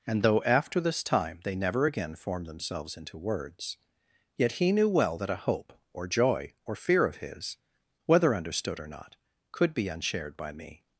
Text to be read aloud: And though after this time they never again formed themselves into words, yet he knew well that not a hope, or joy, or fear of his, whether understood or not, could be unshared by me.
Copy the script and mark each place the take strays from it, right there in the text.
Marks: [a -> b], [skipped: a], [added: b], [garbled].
And though after this time they never again formed themselves into words, yet he knew well that [skipped: not] a hope, or joy, or fear of his, whether understood or not, could be unshared by me.